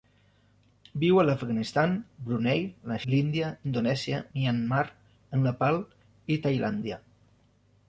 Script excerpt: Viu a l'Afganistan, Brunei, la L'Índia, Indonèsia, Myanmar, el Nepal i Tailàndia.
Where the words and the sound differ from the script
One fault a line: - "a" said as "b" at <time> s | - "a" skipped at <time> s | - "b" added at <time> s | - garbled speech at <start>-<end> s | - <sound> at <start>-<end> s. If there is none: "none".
none